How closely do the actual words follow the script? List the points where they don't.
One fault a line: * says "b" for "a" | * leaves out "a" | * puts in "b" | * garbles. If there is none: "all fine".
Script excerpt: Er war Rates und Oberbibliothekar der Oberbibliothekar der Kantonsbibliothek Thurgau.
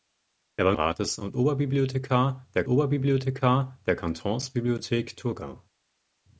all fine